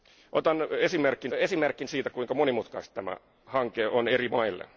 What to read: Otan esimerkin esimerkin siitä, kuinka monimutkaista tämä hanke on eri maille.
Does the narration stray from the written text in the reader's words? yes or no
no